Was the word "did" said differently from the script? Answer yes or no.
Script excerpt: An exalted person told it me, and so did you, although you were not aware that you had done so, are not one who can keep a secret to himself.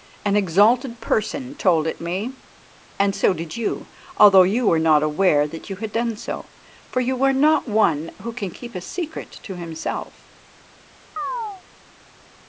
no